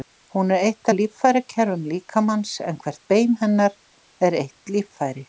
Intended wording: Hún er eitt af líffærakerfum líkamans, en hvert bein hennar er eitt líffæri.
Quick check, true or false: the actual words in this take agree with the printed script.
true